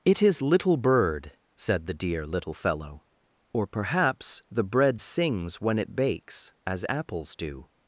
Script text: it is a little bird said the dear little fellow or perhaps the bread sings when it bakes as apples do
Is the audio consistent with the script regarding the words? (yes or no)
no